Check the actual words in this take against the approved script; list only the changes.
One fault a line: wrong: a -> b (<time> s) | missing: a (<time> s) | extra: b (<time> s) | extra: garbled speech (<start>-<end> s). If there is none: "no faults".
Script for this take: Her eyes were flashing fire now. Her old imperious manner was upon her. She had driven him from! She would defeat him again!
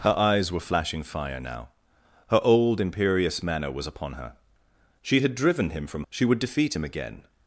no faults